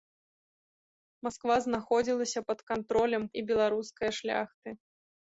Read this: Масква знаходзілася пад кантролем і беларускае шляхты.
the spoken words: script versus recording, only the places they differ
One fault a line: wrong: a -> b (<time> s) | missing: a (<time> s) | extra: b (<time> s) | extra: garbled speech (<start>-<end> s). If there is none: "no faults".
no faults